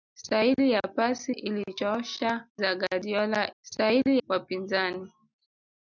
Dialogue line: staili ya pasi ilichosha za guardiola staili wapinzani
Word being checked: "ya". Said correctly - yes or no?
yes